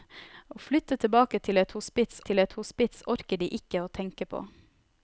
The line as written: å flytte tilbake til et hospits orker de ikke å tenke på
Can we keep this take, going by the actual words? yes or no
no